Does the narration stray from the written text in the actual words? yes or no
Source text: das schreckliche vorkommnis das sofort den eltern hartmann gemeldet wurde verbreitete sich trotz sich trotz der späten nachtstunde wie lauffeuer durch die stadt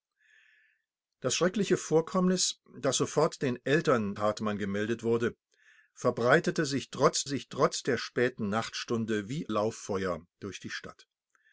no